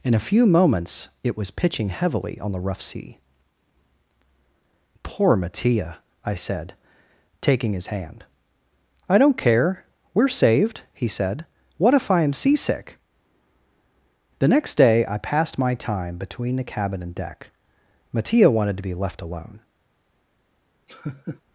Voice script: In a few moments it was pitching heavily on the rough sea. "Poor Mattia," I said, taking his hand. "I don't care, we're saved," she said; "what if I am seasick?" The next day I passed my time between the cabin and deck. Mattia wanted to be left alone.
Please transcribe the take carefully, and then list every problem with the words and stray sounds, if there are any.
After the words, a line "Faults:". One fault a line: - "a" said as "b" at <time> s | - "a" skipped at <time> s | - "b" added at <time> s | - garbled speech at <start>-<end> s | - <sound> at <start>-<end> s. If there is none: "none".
In a few moments it was pitching heavily on the rough sea. "Poor Mattia," I said, taking his hand. "I don't care, we're saved," he said; "what if I am seasick?" The next day I passed my time between the cabin and deck. Mattia wanted to be left alone.
Faults:
- "she" said as "he" at 10.9 s
- laugh at 20.9-21.4 s